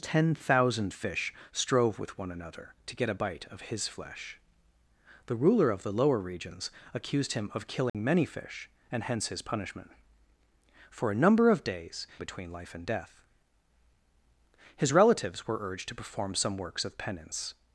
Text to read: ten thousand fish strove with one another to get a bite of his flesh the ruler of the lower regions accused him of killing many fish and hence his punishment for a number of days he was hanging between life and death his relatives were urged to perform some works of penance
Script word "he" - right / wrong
wrong